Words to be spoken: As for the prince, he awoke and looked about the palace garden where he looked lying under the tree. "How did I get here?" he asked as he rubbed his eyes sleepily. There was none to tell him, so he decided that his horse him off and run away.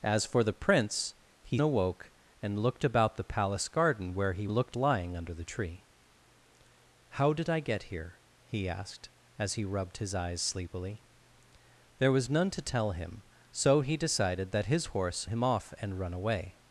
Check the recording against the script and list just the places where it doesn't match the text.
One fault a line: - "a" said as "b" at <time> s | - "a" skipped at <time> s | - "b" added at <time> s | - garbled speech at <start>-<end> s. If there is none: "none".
none